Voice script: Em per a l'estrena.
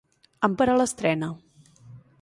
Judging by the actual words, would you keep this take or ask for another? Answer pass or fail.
pass